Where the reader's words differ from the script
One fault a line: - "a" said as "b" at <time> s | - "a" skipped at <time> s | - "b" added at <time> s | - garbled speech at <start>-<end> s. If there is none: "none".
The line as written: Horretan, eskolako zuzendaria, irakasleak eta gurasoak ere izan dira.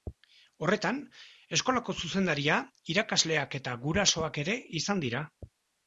none